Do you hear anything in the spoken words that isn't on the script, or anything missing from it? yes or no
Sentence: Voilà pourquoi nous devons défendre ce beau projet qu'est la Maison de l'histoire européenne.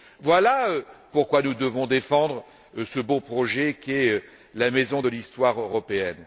no